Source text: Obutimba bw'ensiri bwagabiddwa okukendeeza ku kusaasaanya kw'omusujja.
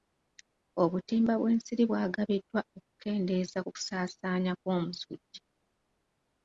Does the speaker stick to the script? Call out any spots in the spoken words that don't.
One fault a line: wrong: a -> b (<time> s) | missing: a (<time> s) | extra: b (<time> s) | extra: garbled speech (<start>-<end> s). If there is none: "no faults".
no faults